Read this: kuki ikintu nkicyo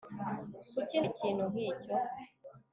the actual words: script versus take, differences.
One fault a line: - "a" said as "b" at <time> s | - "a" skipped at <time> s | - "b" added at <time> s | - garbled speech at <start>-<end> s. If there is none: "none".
none